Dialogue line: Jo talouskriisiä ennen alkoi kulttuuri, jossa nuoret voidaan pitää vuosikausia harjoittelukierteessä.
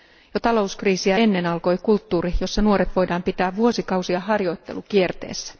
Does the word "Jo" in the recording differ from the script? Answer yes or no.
no